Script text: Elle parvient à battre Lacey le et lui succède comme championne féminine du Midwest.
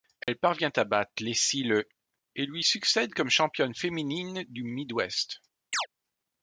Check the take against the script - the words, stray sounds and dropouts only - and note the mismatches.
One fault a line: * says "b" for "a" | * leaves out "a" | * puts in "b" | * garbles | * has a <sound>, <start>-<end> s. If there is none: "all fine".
* has a dropout, 0.2-0.3 s
* has a chirp, 5.7-5.9 s